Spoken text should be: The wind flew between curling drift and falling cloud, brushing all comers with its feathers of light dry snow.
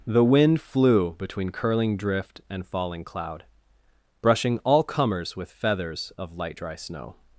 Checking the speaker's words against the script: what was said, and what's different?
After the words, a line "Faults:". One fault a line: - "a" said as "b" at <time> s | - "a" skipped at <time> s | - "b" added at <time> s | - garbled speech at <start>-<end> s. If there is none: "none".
The wind flew between curling drift and falling cloud, brushing all comers with feathers of light dry snow.
Faults:
- "its" skipped at 5.5 s